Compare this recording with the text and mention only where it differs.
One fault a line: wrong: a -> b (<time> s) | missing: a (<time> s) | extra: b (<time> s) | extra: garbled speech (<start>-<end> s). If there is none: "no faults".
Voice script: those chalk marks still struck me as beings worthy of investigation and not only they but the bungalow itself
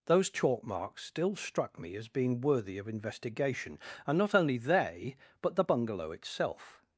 wrong: beings -> being (2.1 s)